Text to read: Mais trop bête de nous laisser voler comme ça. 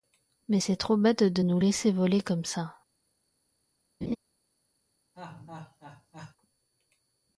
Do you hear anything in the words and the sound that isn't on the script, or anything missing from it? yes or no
yes